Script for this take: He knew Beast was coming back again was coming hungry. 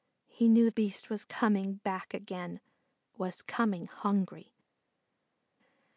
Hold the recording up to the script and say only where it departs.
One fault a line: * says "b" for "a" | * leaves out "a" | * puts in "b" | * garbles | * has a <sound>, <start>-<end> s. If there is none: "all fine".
all fine